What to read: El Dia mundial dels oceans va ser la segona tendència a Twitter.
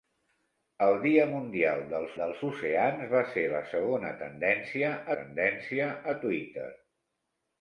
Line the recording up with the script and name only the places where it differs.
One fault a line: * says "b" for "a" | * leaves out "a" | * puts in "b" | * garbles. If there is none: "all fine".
* puts in "dels"
* puts in "tendència"